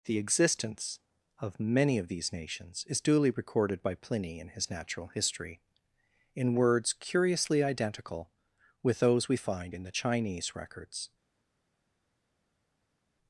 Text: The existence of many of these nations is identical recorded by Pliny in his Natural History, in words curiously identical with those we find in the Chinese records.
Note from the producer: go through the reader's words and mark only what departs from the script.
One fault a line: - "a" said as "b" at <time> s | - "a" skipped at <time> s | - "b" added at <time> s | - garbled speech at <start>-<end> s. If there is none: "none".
- "identical" said as "duly" at 3.0 s